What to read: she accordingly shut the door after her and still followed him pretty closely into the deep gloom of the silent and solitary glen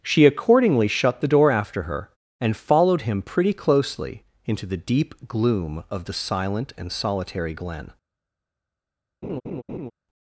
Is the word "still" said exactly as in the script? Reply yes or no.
no